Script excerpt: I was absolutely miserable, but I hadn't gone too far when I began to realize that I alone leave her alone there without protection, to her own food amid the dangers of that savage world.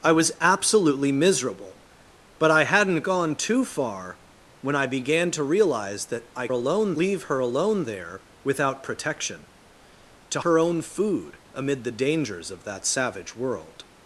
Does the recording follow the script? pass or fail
pass